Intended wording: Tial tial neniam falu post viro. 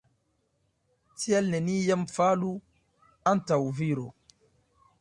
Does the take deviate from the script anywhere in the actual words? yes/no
yes